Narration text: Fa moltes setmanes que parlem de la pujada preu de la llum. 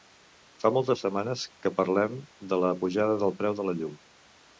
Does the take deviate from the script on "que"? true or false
false